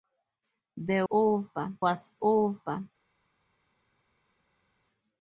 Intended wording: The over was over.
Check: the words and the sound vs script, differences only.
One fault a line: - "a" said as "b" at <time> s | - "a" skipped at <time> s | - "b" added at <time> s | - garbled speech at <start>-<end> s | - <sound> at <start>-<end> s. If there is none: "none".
none